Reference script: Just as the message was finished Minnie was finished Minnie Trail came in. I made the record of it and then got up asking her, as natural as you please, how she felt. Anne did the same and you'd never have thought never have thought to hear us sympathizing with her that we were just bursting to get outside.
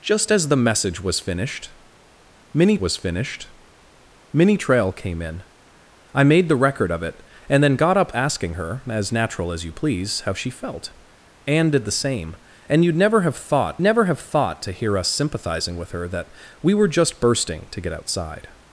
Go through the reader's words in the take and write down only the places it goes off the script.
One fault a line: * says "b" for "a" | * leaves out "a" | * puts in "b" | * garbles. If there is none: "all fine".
all fine